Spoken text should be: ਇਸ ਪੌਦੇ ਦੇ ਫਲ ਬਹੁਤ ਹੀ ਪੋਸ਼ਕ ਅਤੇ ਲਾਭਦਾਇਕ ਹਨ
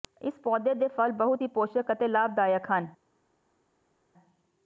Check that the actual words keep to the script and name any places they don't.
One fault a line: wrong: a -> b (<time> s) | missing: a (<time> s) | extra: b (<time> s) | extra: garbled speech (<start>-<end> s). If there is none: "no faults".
no faults